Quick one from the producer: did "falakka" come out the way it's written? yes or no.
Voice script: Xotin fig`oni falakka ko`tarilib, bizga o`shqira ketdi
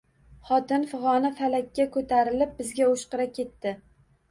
yes